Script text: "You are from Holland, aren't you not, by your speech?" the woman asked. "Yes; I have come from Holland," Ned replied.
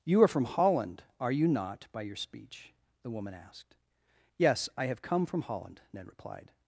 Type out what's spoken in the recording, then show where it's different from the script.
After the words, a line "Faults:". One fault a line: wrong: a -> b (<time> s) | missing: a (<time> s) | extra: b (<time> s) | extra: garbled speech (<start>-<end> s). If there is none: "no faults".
"You are from Holland, are you not, by your speech?" the woman asked. "Yes; I have come from Holland," Ned replied.
Faults:
wrong: aren't -> are (1.2 s)